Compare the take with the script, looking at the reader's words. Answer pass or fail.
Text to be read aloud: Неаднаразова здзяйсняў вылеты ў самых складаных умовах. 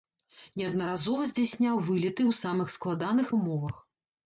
pass